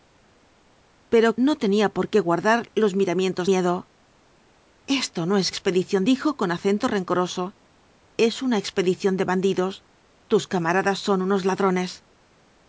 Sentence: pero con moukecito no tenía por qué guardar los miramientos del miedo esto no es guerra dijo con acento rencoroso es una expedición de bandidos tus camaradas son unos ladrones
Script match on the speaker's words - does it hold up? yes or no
no